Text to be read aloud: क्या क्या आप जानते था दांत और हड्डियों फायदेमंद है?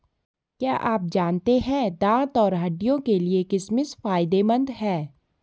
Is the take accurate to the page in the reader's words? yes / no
no